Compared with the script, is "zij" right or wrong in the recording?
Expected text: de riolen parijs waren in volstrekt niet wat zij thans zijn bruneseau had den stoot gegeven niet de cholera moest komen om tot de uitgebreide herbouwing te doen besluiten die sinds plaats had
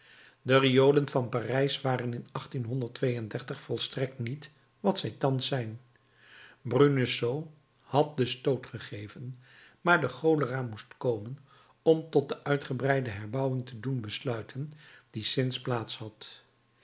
right